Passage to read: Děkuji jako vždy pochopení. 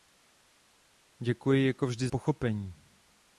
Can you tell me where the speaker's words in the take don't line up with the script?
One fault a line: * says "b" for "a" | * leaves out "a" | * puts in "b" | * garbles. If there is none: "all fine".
all fine